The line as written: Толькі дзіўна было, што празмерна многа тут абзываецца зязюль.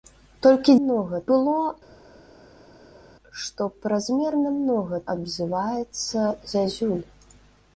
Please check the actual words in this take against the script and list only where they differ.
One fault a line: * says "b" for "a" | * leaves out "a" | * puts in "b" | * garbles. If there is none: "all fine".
* says "многа" for "дзіўна"
* leaves out "тут"